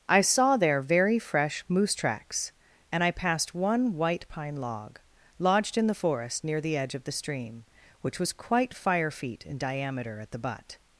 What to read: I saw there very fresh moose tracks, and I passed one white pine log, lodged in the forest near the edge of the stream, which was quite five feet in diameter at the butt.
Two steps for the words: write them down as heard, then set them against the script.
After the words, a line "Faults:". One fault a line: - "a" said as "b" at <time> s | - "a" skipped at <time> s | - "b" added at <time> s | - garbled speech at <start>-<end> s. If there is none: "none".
I saw there very fresh moose tracks, and I passed one white pine log, lodged in the forest near the edge of the stream, which was quite fire feet in diameter at the butt.
Faults:
- "five" said as "fire" at 8.7 s